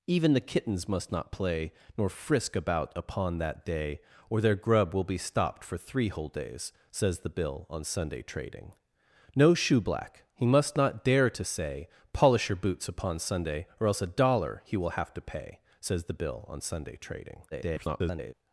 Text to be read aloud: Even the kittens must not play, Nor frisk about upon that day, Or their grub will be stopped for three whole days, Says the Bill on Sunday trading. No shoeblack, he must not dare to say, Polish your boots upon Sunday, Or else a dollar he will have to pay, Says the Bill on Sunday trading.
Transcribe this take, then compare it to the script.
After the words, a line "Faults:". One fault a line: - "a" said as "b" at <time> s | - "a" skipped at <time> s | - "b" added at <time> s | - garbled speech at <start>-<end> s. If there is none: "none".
Even the kittens must not play, Nor frisk about upon that day, Or their grub will be stopped for three whole days, Says the Bill on Sunday trading. No shoeblack, he must not dare to say, Polish your boots upon Sunday, Or else a dollar he will have to pay, Says the Bill on Sunday trading. [garbled]
Faults:
- garbled speech at 17.5-18.3 s